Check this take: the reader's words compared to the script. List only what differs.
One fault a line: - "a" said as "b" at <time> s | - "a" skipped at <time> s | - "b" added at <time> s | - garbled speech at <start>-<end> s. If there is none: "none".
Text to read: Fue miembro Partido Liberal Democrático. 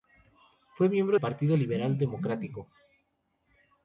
none